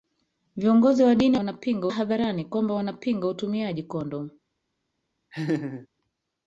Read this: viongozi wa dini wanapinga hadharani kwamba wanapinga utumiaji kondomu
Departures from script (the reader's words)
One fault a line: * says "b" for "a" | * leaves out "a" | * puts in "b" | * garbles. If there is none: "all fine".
all fine